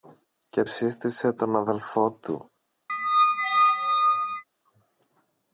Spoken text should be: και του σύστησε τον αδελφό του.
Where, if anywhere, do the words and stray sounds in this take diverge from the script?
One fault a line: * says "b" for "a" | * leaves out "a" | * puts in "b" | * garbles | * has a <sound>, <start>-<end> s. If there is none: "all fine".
* leaves out "του"
* has a squeak, 2.9-4.4 s